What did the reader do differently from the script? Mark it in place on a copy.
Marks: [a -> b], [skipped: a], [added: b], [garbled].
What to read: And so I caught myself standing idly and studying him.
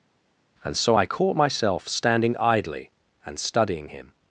And so I caught myself standing idly and studying him.